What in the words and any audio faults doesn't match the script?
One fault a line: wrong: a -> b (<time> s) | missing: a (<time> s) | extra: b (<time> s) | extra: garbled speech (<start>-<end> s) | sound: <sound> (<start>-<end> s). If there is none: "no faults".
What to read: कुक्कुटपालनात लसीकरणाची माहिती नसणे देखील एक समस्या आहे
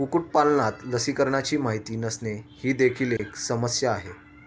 extra: ही (2.6 s)
sound: dropout (3.2-3.2 s)